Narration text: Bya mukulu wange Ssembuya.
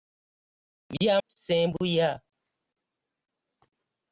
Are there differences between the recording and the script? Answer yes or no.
yes